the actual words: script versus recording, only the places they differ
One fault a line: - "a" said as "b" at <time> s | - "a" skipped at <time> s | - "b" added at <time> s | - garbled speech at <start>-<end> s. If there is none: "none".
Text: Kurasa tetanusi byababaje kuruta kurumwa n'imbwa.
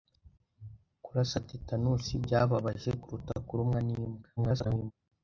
- garbled speech at 4.4-4.9 s